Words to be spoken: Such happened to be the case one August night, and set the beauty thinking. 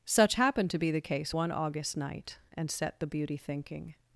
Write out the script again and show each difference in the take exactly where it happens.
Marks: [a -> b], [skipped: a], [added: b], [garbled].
Such happened to be the case one August night, and set the beauty thinking.